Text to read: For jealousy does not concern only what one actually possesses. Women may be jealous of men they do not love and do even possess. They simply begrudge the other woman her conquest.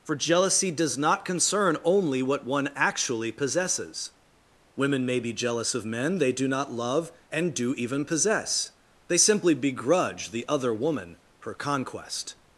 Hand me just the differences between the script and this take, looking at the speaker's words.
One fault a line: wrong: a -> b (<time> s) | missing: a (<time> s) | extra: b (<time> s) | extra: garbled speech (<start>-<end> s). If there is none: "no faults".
no faults